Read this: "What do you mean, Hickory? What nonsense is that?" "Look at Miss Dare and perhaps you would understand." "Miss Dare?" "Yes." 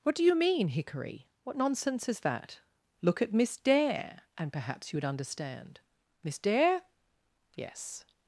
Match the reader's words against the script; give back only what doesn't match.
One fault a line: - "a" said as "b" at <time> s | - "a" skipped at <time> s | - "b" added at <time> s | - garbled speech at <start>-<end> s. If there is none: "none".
none